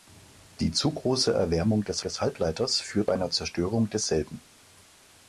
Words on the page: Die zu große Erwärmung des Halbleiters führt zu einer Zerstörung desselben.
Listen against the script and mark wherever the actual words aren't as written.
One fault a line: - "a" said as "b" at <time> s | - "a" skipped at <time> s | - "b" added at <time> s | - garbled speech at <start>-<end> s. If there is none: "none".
- "des" added at 2.0 s
- "zu" skipped at 3.1 s